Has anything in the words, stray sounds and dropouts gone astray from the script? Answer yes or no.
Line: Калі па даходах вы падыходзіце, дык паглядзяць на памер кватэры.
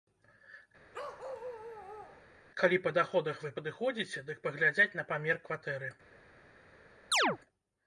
yes